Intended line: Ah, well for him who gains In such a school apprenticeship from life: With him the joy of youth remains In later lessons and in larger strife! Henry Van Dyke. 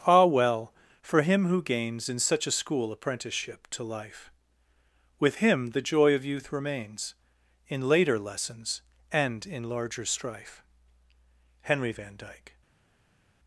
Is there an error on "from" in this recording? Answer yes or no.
yes